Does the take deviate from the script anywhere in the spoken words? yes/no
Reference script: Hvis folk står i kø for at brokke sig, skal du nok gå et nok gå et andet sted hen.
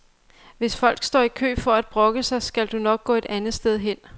yes